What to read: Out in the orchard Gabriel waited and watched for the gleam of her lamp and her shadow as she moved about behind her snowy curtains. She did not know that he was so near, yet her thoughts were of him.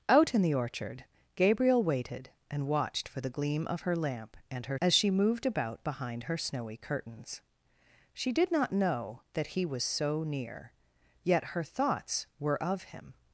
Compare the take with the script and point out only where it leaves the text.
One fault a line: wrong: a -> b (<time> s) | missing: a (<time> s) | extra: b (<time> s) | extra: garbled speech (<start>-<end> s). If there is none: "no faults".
missing: shadow (4.8 s)